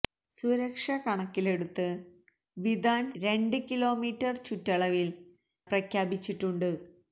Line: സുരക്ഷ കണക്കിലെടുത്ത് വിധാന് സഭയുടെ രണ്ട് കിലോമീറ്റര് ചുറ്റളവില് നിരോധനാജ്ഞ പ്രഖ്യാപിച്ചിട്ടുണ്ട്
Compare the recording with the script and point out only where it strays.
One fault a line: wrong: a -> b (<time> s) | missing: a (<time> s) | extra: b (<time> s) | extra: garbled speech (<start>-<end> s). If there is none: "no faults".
missing: സഭയുടെ (3.1 s)
missing: നിരോധനാജ്ഞ (5.1 s)